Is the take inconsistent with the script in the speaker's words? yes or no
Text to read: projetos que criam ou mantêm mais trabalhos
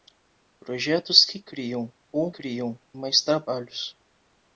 yes